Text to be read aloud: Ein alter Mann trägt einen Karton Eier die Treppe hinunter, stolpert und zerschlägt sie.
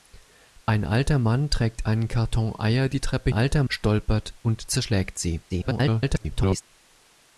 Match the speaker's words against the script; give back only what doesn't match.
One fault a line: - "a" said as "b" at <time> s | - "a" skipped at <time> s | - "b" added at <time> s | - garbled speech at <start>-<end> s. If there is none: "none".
- "hinunter" said as "alter" at 3.3 s
- garbled speech at 5.5-6.6 s